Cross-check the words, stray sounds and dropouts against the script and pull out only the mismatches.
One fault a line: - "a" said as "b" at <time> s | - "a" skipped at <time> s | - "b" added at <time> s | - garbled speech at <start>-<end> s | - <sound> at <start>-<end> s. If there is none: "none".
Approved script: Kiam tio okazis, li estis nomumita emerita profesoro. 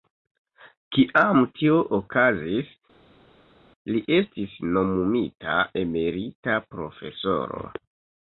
none